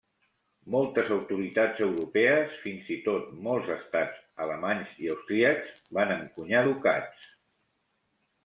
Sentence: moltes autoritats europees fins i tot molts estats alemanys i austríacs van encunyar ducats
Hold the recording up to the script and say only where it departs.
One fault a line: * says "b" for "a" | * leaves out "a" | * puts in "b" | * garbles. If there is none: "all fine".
all fine